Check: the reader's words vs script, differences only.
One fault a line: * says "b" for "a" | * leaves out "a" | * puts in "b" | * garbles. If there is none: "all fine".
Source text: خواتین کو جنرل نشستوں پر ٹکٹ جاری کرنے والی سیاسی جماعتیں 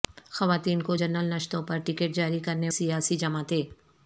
* leaves out "والی"